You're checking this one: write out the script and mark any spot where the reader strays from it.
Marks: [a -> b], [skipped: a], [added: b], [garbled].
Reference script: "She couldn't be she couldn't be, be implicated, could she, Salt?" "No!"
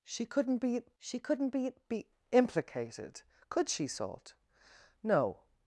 "She couldn't be she couldn't be, be implicated, could she, Salt?" "No!"